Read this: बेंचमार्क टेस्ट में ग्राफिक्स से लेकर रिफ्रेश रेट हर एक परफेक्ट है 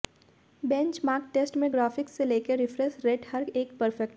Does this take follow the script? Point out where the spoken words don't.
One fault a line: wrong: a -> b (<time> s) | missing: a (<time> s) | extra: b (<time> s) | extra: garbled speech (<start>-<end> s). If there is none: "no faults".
no faults